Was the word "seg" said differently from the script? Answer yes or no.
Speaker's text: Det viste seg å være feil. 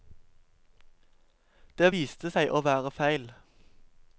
no